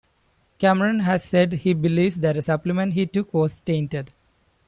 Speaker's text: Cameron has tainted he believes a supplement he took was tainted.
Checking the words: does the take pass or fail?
fail